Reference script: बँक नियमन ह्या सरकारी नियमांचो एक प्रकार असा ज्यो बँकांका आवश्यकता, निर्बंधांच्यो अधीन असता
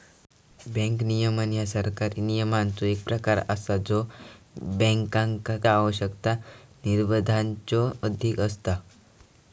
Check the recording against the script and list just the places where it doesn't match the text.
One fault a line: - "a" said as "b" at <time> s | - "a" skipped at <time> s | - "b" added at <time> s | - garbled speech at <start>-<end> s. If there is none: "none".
none